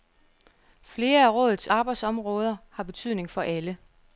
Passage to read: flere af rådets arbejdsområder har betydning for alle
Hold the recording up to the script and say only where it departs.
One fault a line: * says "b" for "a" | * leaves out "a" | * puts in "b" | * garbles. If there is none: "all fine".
all fine